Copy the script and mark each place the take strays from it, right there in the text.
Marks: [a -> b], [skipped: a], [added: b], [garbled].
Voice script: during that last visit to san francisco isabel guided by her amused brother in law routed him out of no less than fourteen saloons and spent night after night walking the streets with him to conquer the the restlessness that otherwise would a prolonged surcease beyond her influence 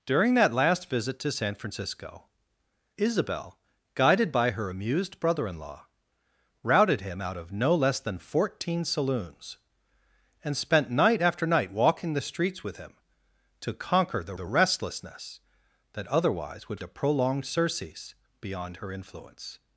during that last visit to san francisco isabel guided by her amused brother in law routed him out of no less than fourteen saloons and spent night after night walking the streets with him to conquer the the restlessness that otherwise would a prolonged surcease beyond her influence